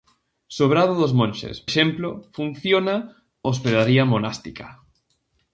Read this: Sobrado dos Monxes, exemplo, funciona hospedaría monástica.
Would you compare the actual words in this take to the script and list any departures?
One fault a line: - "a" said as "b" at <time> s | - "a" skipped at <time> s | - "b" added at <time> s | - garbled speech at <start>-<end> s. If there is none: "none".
none